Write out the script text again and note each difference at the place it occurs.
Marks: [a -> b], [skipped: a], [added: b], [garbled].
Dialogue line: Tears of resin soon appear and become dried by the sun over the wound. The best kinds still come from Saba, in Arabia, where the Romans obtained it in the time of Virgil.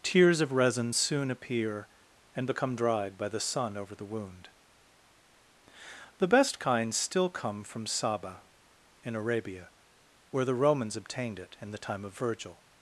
Tears of resin soon appear and become dried by the sun over the wound. The best kinds still come from Saba, in Arabia, where the Romans obtained it in the time of Virgil.